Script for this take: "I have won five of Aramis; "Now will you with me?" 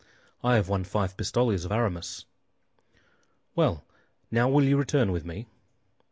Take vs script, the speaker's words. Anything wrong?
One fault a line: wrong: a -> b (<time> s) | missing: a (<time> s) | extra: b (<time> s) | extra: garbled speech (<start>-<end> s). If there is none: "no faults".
extra: pistoles (1.1 s)
extra: Well (3.6 s)
extra: return (4.8 s)